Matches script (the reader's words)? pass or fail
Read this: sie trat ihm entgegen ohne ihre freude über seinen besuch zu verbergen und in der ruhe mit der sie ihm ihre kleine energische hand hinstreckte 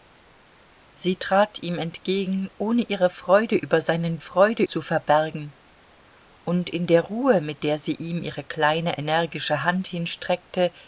fail